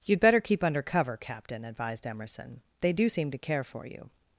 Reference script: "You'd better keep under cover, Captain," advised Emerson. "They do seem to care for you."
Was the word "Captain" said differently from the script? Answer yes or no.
no